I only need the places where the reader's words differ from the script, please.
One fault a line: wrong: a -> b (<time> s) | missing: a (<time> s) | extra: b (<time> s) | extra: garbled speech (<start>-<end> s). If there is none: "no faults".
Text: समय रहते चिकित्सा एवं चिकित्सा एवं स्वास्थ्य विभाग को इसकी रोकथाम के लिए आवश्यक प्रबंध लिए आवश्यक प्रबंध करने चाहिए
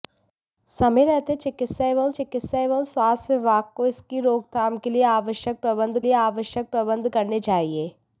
no faults